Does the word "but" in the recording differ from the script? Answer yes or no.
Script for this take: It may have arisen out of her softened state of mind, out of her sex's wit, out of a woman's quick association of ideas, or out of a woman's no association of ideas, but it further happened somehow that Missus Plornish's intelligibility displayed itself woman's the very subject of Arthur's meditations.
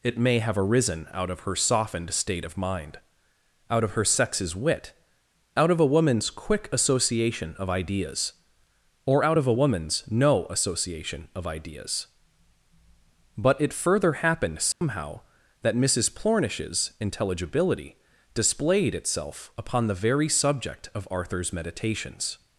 no